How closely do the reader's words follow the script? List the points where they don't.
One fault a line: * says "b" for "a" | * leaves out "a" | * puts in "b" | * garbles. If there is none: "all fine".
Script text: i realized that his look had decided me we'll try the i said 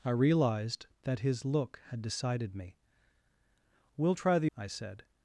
all fine